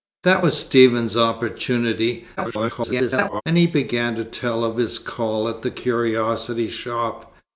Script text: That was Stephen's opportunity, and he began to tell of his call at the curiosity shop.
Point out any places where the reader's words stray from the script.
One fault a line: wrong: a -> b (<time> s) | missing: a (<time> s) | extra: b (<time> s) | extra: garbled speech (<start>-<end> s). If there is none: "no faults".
extra: garbled speech (2.4-3.4 s)